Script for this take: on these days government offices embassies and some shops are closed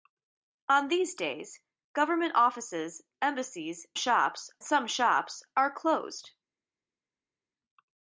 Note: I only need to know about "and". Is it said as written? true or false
false